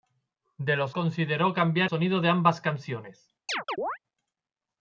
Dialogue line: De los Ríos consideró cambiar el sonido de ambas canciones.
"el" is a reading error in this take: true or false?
true